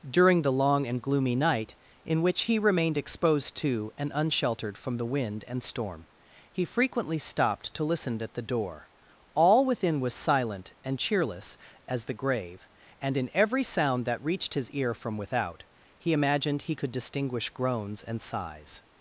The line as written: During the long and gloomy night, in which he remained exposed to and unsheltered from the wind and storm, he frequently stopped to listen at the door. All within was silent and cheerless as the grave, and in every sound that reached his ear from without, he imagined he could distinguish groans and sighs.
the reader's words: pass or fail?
pass